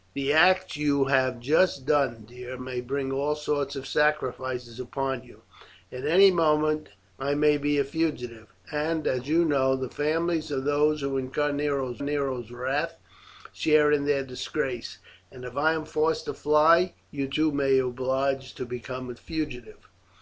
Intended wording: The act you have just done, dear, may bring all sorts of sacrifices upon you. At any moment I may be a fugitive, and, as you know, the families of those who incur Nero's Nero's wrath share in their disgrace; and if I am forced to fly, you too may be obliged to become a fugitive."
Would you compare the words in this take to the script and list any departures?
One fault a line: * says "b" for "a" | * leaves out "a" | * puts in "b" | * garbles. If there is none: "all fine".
all fine